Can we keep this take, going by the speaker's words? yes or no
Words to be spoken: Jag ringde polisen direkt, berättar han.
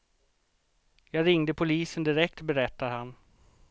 yes